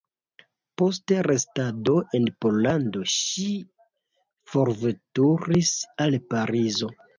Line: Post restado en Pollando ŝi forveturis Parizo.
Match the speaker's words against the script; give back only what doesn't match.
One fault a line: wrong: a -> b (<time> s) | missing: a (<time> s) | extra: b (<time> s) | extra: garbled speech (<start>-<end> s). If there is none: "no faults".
extra: al (6.1 s)